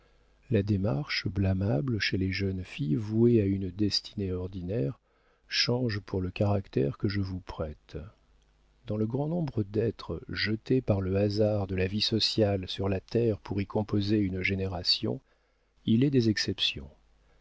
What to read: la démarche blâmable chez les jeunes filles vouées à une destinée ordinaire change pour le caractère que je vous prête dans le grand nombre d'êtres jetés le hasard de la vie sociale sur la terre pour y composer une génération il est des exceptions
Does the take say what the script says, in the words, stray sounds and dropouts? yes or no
no